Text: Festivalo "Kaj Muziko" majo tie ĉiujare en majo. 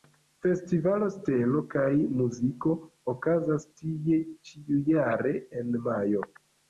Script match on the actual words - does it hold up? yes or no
no